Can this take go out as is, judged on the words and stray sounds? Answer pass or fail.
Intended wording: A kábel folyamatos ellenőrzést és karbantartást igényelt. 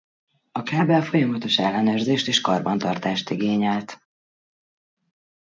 pass